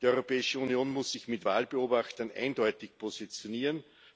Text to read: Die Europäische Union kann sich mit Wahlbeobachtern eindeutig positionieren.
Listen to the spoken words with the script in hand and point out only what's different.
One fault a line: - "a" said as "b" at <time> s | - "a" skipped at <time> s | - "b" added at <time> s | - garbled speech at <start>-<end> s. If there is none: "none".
- "kann" said as "muss" at 0.9 s